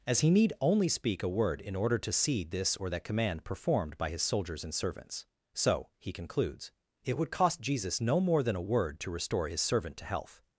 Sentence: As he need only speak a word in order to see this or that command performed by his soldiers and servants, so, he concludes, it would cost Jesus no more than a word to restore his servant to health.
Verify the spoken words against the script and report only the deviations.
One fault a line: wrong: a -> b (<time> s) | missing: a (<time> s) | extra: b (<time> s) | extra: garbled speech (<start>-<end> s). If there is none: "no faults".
no faults